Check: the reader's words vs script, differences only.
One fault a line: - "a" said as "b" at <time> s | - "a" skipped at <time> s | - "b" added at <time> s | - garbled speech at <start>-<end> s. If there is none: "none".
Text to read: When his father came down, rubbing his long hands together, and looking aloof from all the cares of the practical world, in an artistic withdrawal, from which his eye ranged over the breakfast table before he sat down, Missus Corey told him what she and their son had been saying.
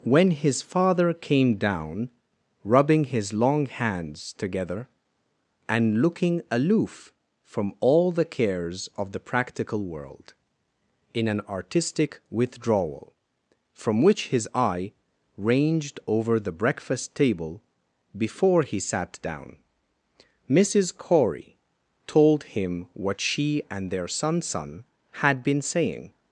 - "son" added at 24.4 s